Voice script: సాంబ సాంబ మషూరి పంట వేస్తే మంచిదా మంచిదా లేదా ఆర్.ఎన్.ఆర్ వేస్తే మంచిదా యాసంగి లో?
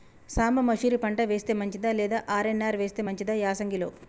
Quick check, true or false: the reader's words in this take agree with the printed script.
false